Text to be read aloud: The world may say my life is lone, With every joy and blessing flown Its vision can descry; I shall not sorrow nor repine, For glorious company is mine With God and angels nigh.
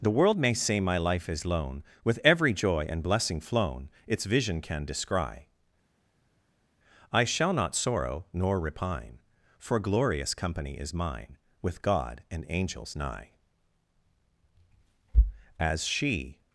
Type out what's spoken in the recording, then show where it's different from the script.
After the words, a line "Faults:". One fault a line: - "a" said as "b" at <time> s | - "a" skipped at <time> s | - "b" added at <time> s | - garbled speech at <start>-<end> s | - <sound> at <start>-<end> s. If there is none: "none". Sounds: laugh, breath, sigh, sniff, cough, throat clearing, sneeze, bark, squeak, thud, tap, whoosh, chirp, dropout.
The world may say my life is lone, With every joy and blessing flown Its vision can descry; I shall not sorrow nor repine, For glorious company is mine With God and angels nigh. As she
Faults:
- "As she" added at 15.6 s